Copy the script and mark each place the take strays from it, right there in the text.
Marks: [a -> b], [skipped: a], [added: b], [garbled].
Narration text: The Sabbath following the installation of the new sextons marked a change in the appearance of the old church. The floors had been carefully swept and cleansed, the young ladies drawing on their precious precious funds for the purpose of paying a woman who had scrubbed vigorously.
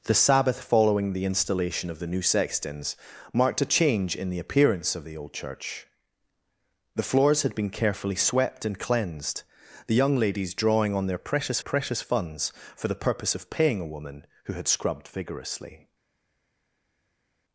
The Sabbath following the installation of the new sextons marked a change in the appearance of the old church. The floors had been carefully swept and cleansed, the young ladies drawing on their precious precious funds for the purpose of paying a woman who had scrubbed vigorously.